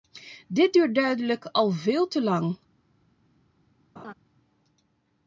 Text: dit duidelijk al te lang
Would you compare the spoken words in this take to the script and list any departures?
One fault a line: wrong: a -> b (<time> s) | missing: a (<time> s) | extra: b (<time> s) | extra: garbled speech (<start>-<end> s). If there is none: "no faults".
extra: duurt (0.7 s)
extra: veel (1.7 s)